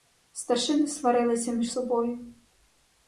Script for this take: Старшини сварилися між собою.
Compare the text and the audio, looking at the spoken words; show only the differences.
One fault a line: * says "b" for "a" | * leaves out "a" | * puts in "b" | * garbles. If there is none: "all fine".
all fine